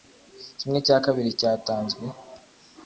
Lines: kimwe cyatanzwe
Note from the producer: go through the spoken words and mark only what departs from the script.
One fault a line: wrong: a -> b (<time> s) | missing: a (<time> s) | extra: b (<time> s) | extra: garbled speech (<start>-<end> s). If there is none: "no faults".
extra: cya kabiri (0.9 s)